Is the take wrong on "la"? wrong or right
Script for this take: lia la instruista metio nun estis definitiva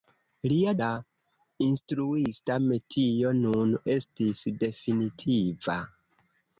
right